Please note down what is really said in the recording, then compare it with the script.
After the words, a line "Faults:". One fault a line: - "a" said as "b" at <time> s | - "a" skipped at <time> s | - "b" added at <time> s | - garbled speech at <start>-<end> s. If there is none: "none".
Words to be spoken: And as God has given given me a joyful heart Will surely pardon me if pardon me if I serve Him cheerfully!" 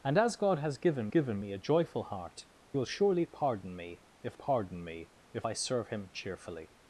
And as God has given given me a joyful heart Will surely pardon me if pardon me if I serve Him cheerfully!"
Faults:
none